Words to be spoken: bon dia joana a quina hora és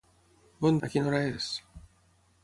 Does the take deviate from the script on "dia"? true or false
true